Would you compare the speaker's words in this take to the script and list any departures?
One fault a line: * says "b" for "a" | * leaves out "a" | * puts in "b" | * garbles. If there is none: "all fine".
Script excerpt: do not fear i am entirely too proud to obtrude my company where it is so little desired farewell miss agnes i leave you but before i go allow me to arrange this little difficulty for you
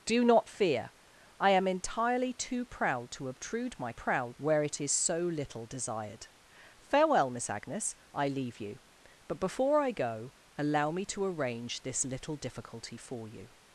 * says "proud" for "company"